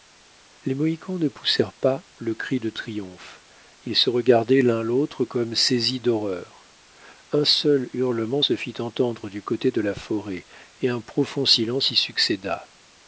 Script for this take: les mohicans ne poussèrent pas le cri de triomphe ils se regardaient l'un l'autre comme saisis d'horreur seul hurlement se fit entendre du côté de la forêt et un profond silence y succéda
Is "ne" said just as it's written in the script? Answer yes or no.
yes